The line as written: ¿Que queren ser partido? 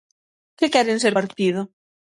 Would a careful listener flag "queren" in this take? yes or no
no